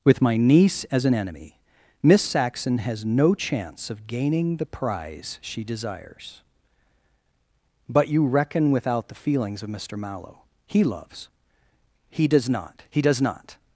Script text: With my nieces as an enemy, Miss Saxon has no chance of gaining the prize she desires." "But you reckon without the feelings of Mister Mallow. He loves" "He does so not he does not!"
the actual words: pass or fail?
fail